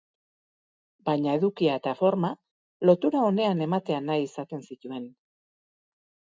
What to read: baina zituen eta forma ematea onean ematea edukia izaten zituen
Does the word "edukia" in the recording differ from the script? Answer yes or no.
yes